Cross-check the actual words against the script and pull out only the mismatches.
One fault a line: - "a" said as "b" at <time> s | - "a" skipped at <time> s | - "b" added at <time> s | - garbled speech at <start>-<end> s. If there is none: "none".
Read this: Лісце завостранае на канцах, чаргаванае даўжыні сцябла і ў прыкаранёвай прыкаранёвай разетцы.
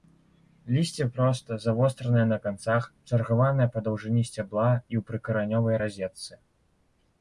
- "простае" added at 1.2 s
- "па" added at 3.8 s
- "прыкаранёвай" skipped at 5.8 s